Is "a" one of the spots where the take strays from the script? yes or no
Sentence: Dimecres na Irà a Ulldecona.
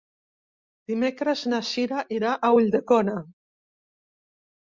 no